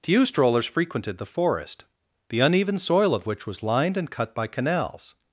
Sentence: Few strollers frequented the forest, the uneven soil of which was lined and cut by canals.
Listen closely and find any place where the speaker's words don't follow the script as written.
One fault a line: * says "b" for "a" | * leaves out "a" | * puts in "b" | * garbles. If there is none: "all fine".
all fine